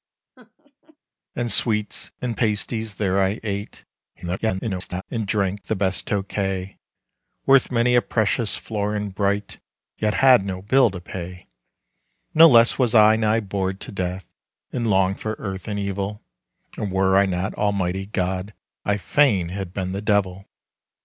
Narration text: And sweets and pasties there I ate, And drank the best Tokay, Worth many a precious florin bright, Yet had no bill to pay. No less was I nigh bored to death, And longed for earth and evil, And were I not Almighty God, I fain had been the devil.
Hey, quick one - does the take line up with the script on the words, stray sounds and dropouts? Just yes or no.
no